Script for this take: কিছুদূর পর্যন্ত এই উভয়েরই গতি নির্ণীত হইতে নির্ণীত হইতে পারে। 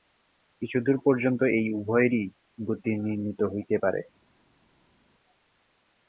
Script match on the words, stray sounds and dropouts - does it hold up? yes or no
no